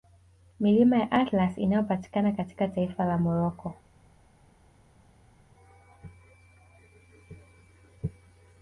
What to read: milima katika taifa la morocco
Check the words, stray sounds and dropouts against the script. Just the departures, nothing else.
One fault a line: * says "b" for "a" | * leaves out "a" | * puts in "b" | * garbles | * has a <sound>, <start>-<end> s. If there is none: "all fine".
* puts in "ya atlas inayopatikana"